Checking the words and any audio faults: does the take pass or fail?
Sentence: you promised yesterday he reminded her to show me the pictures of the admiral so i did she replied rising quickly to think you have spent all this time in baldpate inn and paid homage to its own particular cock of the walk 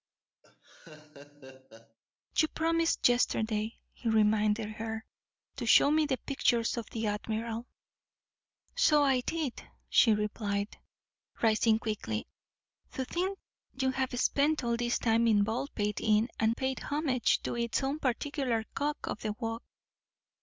fail